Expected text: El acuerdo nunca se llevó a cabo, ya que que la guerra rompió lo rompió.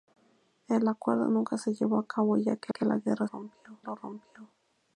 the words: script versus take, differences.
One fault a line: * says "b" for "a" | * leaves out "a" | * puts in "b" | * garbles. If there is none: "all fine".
all fine